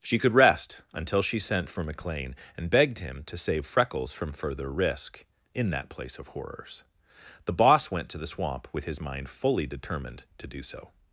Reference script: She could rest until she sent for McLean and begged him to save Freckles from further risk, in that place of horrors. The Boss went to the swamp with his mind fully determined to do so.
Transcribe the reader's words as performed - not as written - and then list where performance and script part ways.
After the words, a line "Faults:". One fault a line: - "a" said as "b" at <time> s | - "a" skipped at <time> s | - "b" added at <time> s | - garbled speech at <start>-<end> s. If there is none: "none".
She could rest until she sent for McLean and begged him to save Freckles from further risk, in that place of horrors. The Boss went to the swamp with his mind fully determined to do so.
Faults:
none